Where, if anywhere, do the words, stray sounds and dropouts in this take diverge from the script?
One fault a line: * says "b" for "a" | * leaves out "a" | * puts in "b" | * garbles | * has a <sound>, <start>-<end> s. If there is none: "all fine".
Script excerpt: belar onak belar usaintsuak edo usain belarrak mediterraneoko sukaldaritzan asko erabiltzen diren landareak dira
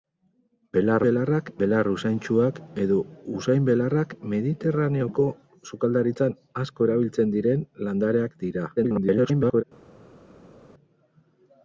* says "belarrak" for "onak"
* garbles